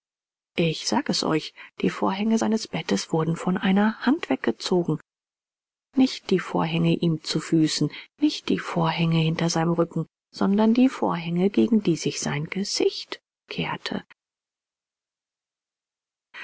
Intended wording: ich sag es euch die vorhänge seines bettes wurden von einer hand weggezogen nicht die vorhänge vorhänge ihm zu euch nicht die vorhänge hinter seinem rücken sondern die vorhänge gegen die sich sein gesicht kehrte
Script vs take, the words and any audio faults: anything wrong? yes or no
yes